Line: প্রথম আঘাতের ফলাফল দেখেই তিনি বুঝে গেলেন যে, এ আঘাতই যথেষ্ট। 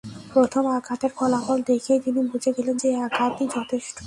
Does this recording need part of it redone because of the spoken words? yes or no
no